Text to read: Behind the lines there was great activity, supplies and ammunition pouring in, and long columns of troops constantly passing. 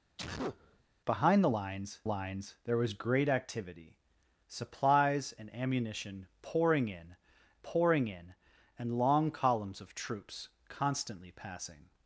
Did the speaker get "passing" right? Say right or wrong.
right